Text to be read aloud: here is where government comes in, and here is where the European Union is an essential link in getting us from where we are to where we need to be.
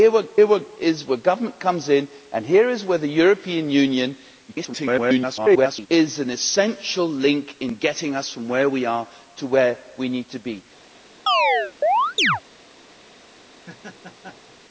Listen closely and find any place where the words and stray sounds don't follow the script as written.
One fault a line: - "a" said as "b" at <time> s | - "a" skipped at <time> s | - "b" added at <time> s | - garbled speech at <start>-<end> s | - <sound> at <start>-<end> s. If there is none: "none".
- "here" added at 0.4 s
- garbled speech at 4.5-5.9 s
- chirp at 11.3-12.4 s
- laugh at 13.5-14.6 s